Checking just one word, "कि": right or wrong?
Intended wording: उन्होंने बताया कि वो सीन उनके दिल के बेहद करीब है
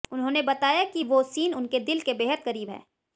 right